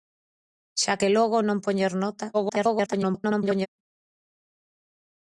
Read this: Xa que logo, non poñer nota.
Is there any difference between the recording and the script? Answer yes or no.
yes